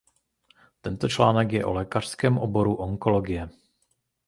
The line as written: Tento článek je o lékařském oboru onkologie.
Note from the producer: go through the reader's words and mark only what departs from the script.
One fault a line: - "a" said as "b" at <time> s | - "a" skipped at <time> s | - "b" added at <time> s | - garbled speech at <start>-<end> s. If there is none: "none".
none